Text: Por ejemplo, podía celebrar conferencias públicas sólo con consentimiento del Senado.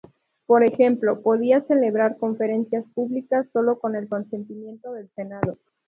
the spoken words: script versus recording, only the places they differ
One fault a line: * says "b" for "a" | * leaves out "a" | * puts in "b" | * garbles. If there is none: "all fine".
* puts in "el"